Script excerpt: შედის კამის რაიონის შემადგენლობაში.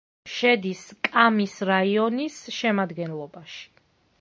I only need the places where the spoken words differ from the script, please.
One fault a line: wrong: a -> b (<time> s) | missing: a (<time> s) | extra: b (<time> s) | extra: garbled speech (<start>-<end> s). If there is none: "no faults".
no faults